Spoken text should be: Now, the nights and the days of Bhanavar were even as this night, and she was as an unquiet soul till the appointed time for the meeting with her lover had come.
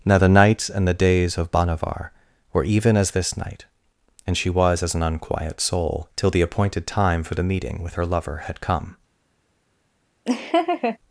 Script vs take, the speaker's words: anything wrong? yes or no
no